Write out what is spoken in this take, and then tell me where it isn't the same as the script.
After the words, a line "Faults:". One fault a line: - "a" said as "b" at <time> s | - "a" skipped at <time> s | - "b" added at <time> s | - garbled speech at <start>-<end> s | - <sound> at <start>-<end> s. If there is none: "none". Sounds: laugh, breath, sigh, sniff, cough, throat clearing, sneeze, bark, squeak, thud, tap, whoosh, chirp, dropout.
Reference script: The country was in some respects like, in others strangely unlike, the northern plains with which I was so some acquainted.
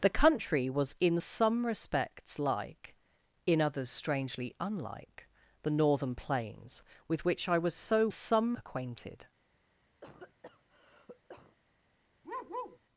The country was in some respects like, in others strangely unlike, the northern plains with which I was so some acquainted.
Faults:
- cough at 10.0-11.6 s
- bark at 12.2-12.8 s